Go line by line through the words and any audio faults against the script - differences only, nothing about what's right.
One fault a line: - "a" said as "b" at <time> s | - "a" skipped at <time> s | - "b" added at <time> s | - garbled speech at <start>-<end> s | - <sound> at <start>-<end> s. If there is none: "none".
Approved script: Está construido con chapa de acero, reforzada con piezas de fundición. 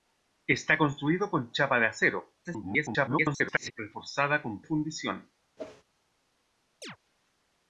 - garbled speech at 2.4-3.7 s
- "piezas de" skipped at 4.6 s
- whoosh at 5.6-5.8 s
- chirp at 6.8-7.0 s